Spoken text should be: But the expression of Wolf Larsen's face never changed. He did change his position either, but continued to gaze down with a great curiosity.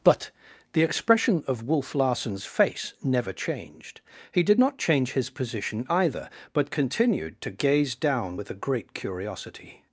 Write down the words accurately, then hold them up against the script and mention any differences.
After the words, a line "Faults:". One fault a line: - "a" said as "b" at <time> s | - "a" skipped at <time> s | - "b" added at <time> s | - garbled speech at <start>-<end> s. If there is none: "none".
But the expression of Wolf Larsen's face never changed. He did not change his position either, but continued to gaze down with a great curiosity.
Faults:
- "not" added at 4.6 s